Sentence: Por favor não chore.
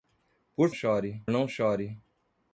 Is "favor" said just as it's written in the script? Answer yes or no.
no